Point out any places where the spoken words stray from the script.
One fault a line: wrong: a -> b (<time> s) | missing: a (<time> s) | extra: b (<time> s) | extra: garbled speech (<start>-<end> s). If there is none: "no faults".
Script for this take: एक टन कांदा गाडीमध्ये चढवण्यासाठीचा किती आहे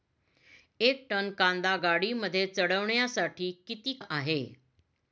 no faults